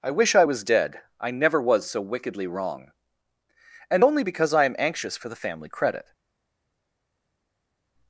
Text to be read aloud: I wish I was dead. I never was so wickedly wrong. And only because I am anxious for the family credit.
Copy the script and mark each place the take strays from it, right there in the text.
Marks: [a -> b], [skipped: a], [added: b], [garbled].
I wish I was dead. I never was so wickedly wrong. And only because I am anxious for the family credit.